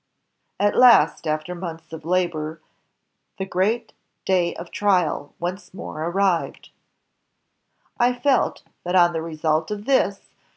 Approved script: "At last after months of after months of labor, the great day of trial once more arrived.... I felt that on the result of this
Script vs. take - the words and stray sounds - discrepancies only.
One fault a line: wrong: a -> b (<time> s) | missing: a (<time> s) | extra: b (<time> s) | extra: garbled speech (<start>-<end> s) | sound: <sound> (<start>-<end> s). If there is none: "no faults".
missing: after months of (2.0 s)